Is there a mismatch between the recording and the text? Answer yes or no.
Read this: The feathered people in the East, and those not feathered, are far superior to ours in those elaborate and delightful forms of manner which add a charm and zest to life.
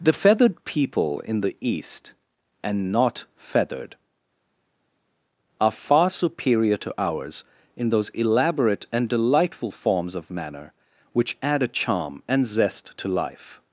yes